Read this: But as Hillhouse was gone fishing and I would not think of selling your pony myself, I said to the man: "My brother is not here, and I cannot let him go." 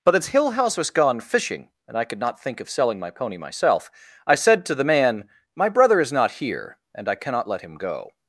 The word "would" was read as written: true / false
false